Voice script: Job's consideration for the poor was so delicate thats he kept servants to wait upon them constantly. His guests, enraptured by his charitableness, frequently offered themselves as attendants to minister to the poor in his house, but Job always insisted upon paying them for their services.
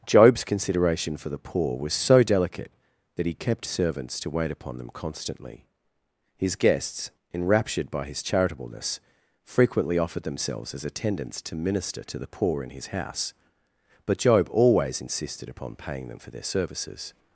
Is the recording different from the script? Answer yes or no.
yes